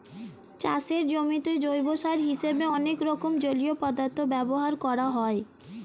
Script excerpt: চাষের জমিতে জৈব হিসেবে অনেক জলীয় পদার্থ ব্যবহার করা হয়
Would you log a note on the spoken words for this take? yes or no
yes